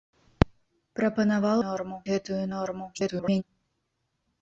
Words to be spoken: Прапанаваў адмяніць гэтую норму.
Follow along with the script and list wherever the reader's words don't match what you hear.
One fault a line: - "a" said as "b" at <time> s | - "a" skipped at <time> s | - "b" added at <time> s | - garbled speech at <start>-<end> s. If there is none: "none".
- "адмяніць" said as "норму" at 1.6 s
- garbled speech at 2.9-3.4 s